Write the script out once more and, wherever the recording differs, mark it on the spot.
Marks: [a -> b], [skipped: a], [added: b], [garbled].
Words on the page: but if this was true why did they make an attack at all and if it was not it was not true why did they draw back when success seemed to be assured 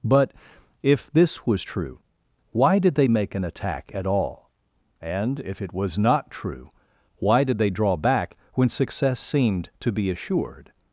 but if this was true why did they make an attack at all and if it was not [skipped: it was not] true why did they draw back when success seemed to be assured